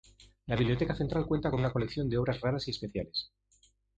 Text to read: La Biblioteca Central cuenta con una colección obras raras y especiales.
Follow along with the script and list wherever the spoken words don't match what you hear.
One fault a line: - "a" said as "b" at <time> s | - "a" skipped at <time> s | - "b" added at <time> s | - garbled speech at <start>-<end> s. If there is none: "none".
- "de" added at 2.1 s